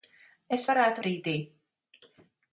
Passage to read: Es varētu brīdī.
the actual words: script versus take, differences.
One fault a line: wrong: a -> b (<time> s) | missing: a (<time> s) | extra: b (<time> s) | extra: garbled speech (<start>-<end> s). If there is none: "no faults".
no faults